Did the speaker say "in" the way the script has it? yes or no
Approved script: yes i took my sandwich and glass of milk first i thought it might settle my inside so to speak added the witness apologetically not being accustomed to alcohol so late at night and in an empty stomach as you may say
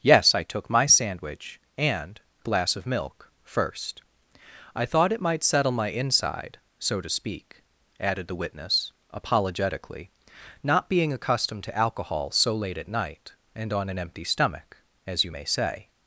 no